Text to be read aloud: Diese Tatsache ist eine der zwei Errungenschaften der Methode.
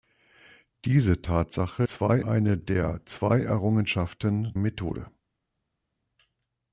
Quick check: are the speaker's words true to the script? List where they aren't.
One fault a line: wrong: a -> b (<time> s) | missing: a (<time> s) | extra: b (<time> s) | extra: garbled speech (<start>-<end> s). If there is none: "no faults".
wrong: ist -> zwei (1.9 s)
missing: der (4.5 s)